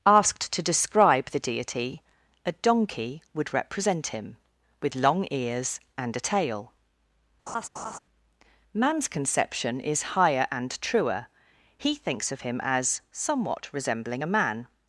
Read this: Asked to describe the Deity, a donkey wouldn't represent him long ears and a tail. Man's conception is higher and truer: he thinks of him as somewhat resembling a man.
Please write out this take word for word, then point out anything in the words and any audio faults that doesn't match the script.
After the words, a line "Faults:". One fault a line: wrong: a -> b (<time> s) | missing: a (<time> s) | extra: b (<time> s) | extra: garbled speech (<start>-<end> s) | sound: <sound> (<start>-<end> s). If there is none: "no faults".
Asked to describe the Deity, a donkey would represent him with long ears and a tail. Man's conception is higher and truer: he thinks of him as somewhat resembling a man.
Faults:
wrong: wouldn't -> would (3.4 s)
extra: with (4.8 s)
sound: laugh (7.5-8.0 s)